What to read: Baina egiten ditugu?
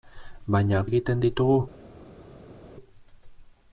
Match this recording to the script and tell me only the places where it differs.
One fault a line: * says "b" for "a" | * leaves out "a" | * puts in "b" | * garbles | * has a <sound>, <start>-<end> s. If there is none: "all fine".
all fine